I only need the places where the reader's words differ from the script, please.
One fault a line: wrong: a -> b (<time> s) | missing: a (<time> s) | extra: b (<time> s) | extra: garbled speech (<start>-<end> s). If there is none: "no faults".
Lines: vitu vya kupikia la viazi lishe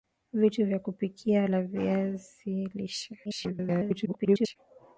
extra: garbled speech (3.2-4.6 s)